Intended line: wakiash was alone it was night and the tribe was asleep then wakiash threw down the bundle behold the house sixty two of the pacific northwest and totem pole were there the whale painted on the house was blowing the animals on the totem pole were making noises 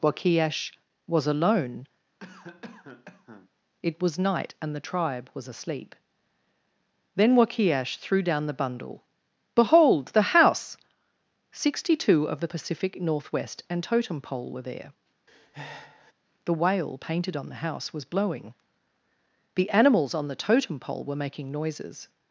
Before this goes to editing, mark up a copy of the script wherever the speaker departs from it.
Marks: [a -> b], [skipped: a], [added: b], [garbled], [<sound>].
wakiash was alone [cough] it was night and the tribe was asleep then wakiash threw down the bundle behold the house sixty two of the pacific northwest and totem pole were there [breath] the whale painted on the house was blowing the animals on the totem pole were making noises